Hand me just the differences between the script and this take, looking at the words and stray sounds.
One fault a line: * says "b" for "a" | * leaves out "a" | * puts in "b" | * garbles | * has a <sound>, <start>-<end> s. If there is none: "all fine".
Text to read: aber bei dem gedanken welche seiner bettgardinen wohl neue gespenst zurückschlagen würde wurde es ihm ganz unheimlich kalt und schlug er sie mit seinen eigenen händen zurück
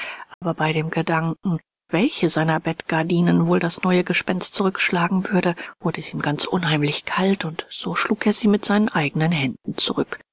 * has a dropout, 0.3-0.4 s
* puts in "das"
* puts in "so"